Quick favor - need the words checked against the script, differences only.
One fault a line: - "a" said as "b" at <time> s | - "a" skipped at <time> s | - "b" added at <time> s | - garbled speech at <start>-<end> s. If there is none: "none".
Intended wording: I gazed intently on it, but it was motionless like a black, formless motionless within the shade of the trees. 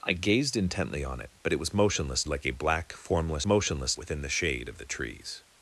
none